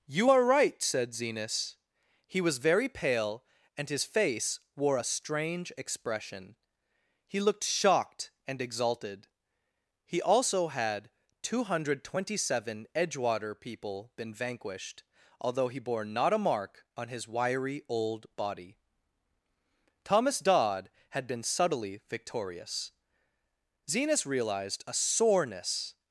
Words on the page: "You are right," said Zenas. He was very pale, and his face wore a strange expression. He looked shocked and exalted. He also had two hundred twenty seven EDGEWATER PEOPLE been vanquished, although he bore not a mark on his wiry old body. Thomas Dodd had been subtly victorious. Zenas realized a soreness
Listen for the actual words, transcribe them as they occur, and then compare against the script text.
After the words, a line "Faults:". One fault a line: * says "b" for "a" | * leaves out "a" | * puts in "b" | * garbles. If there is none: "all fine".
"You are right," said Zenas. He was very pale, and his face wore a strange expression. He looked shocked and exalted. He also had two hundred twenty seven EDGEWATER PEOPLE been vanquished, although he bore not a mark on his wiry old body. Thomas Dodd had been subtly victorious. Zenas realized a soreness
Faults:
all fine